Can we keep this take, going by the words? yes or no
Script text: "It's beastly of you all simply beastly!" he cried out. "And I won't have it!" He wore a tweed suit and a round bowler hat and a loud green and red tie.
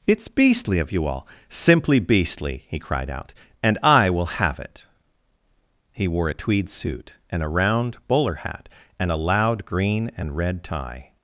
no